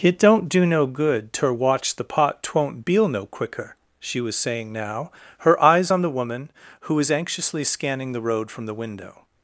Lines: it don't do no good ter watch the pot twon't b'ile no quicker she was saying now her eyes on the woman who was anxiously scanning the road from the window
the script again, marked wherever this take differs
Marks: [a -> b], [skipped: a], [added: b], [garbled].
it don't do no good ter watch the pot twon't b'ile no quicker she was saying now her eyes on the woman who was anxiously scanning the road from the window